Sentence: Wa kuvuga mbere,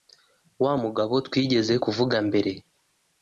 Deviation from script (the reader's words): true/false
true